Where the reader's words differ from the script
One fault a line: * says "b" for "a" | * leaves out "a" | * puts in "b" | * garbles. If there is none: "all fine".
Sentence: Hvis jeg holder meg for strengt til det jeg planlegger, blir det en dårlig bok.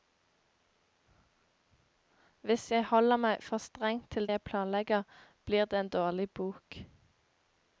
* leaves out "det"